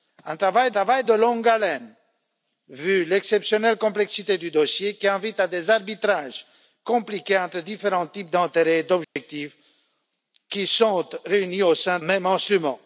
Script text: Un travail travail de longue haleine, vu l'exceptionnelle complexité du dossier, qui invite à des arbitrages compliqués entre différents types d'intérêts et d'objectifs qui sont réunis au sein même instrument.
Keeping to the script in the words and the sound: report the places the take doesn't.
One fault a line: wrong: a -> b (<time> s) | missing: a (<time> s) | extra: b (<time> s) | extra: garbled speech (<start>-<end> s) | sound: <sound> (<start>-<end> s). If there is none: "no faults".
sound: dropout (9.0-9.2 s)